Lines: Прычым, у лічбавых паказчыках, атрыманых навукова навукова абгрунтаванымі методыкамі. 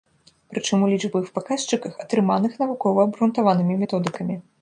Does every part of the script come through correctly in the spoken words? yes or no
no